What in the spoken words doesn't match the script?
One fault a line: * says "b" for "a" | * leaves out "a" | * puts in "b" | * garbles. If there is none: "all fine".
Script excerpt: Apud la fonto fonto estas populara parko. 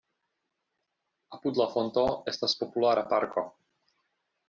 * leaves out "fonto"